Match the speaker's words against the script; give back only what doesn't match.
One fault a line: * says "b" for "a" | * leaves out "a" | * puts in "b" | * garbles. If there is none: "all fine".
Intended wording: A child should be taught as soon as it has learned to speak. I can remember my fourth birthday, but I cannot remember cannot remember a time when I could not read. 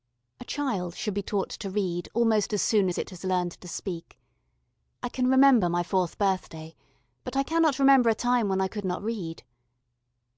* puts in "to read almost"
* leaves out "cannot remember"